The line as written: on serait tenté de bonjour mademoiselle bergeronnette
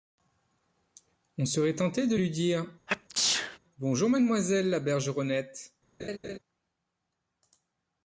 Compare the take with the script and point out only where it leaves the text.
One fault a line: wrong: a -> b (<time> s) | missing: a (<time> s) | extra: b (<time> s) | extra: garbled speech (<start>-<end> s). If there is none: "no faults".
extra: lui dire (2.1 s)
extra: la (4.7 s)